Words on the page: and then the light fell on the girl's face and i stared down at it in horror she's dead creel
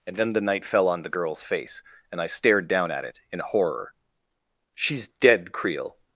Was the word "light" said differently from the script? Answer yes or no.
yes